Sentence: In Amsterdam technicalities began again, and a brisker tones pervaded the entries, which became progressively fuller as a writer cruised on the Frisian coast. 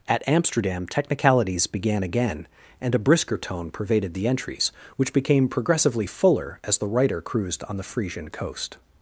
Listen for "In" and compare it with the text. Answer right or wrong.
wrong